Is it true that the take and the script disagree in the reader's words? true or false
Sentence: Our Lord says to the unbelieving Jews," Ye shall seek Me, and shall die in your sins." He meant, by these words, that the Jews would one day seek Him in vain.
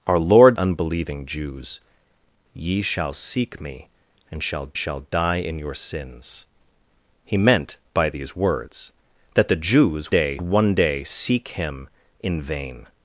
true